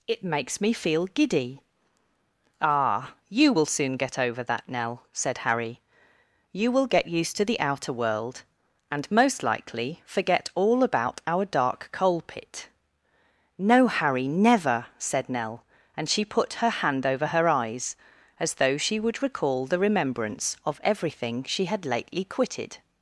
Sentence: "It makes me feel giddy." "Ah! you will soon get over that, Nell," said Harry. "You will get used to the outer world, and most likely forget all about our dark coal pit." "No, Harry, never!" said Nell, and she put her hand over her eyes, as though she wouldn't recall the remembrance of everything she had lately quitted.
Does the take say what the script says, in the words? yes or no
no